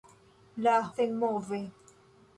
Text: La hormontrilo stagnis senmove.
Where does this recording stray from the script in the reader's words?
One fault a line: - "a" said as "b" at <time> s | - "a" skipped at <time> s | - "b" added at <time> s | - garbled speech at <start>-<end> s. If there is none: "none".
- "hormontrilo stagnis" skipped at 0.7 s